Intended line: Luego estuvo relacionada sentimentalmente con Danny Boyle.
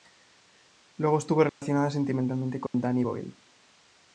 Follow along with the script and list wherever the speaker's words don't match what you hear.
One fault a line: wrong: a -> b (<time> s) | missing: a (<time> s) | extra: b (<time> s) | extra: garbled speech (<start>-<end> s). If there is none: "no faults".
no faults